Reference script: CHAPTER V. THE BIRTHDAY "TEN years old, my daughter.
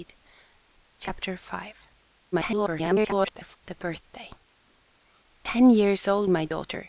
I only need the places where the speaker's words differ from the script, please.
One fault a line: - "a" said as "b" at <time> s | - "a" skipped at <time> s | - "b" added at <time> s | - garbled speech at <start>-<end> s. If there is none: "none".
- garbled speech at 2.3-3.6 s